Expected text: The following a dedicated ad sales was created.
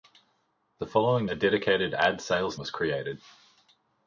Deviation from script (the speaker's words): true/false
false